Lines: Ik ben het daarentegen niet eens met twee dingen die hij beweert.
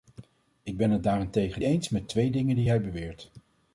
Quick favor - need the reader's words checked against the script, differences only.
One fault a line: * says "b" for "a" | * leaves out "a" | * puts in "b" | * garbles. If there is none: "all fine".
* leaves out "niet"